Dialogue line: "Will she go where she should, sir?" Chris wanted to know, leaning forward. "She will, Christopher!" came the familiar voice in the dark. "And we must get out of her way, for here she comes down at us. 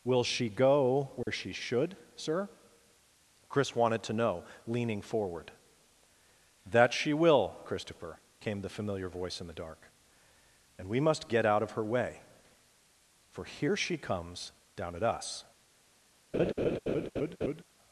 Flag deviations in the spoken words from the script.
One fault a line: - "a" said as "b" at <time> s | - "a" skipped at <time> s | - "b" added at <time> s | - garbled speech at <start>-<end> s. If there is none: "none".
- "That" added at 6.7 s